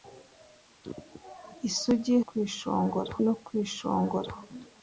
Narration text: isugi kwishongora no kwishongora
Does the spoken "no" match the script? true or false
true